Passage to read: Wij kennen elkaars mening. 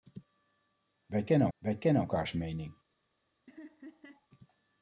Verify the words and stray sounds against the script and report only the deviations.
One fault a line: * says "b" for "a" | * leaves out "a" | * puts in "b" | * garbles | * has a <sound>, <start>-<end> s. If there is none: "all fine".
* puts in "wij kennen"
* has a laugh, 3.5-4.3 s